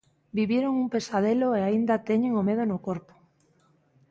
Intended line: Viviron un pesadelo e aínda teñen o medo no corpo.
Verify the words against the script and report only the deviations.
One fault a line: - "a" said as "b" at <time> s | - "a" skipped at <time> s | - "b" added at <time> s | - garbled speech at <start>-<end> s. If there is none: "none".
none